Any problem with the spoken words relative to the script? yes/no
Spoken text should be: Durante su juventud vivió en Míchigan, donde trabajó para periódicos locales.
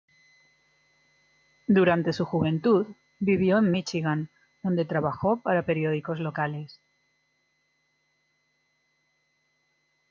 no